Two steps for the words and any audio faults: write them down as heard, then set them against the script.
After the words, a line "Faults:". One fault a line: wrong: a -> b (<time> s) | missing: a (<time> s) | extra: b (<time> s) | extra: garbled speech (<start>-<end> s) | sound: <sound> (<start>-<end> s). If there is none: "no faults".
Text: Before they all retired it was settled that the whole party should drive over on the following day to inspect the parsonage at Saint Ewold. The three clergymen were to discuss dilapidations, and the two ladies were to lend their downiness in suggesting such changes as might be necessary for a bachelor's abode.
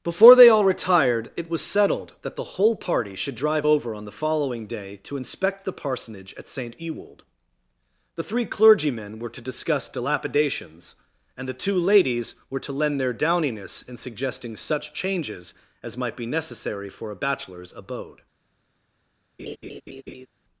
Before they all retired it was settled that the whole party should drive over on the following day to inspect the parsonage at Saint Ewold. The three clergymen were to discuss dilapidations, and the two ladies were to lend their downiness in suggesting such changes as might be necessary for a bachelor's abode.
Faults:
sound: laugh (19.4-20.3 s)